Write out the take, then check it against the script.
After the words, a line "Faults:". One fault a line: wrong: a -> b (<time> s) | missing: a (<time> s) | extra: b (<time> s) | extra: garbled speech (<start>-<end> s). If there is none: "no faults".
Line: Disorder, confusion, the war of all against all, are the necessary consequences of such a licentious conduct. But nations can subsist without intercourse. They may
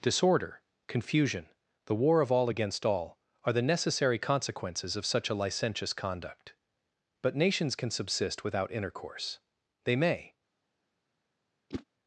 Disorder, confusion, the war of all against all, are the necessary consequences of such a licentious conduct. But nations can subsist without intercourse. They may
Faults:
no faults